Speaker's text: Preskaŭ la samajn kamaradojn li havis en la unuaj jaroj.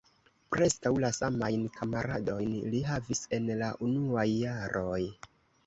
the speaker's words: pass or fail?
pass